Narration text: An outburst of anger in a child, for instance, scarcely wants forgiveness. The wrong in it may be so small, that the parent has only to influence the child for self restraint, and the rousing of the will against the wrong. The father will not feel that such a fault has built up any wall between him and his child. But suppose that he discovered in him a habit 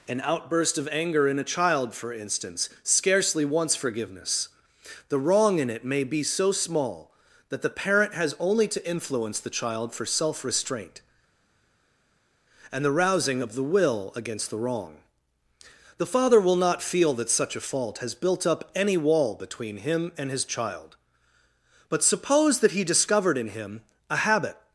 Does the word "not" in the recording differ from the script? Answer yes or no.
no